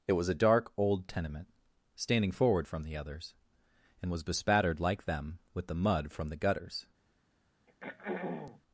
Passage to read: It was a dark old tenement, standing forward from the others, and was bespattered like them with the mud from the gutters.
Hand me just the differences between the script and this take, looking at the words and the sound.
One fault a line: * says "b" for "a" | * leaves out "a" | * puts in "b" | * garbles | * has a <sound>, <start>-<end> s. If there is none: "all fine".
* has a throat clearing, 7.7-8.6 s